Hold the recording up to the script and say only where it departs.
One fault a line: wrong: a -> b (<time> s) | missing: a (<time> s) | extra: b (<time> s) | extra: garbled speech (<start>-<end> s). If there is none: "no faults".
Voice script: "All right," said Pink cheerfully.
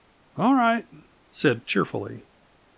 missing: Pink (1.6 s)